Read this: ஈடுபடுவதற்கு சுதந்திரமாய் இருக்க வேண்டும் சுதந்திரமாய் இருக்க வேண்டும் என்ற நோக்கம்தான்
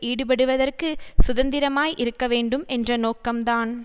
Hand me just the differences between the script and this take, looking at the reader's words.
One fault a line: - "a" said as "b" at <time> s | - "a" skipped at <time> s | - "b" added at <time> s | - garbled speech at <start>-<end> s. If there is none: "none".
- "சுதந்திரமாய் இருக்க வேண்டும்" skipped at 2.6 s